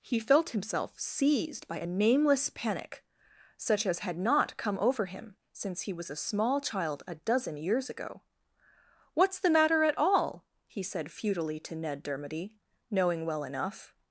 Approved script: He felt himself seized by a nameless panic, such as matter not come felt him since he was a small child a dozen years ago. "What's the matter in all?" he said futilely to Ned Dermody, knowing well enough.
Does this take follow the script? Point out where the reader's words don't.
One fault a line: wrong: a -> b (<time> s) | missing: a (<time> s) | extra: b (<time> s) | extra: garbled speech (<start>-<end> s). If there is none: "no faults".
wrong: matter -> had (4.0 s)
wrong: felt -> over (4.8 s)
wrong: in -> at (9.8 s)